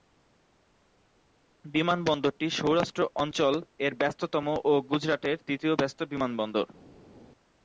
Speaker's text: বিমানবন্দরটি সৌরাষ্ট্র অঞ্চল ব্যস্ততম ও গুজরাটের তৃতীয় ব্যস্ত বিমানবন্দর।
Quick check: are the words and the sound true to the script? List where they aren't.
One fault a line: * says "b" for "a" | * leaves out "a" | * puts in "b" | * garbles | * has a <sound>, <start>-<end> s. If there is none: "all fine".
* puts in "এর"